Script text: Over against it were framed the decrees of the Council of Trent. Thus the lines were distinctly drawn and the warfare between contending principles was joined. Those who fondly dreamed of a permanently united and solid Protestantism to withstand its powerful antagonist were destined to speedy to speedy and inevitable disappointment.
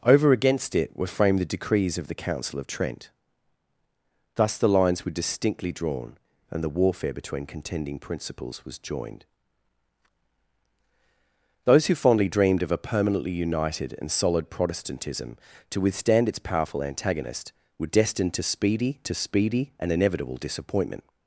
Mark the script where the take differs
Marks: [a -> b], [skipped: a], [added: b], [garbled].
Over against it were framed the decrees of the Council of Trent. Thus the lines were distinctly drawn and the warfare between contending principles was joined. Those who fondly dreamed of a permanently united and solid Protestantism to withstand its powerful antagonist were destined to speedy to speedy and inevitable disappointment.